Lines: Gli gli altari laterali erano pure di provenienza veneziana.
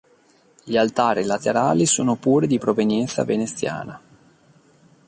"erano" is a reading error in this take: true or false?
true